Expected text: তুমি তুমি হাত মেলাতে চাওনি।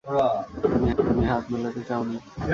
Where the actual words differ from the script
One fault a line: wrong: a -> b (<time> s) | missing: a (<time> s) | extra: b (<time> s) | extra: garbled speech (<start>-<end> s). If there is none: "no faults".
no faults